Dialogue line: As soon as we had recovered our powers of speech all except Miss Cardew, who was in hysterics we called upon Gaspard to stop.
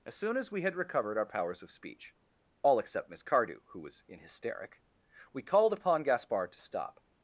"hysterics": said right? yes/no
no